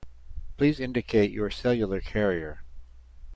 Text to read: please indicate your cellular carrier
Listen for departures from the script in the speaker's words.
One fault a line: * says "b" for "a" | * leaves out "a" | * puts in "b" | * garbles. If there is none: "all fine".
all fine